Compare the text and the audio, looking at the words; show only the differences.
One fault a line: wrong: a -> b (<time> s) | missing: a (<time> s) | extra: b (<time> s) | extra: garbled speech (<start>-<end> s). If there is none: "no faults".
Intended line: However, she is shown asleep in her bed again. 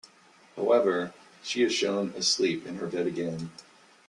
no faults